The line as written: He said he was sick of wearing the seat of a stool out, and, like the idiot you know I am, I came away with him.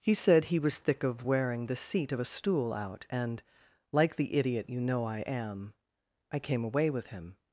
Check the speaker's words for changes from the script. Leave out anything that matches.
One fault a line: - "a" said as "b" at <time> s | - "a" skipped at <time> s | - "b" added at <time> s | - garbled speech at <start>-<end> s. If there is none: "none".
- "sick" said as "thick" at 0.8 s